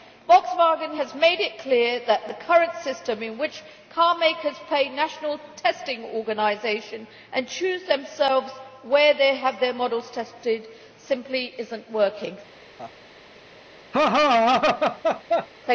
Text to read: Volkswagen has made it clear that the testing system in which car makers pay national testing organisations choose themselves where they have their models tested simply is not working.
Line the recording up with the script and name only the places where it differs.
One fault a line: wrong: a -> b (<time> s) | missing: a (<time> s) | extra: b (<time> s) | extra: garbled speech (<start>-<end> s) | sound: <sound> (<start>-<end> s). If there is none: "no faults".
wrong: testing -> current (2.4 s)
extra: and (7.3 s)
sound: laugh (12.8-13.0 s)
sound: laugh (13.9-15.5 s)